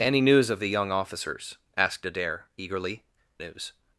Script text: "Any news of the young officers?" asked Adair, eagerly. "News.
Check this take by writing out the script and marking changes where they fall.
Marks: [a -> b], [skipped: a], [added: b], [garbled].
"Any news of the young officers?" asked Adair, eagerly. "News.